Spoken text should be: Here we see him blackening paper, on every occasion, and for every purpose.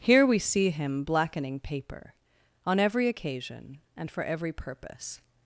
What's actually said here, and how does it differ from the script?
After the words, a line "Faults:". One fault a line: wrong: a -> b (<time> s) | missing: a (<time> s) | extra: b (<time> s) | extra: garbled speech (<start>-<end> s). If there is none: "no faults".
Here we see him blackening paper, on every occasion, and for every purpose.
Faults:
no faults